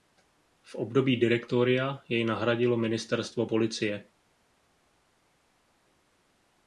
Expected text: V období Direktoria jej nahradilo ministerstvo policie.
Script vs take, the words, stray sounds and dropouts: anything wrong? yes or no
no